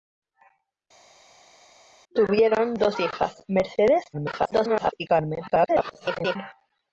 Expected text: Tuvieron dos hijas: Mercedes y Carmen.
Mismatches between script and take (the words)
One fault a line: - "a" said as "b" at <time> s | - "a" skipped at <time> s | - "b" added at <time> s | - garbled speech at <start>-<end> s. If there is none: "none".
- garbled speech at 4.1-4.9 s
- garbled speech at 5.5-6.4 s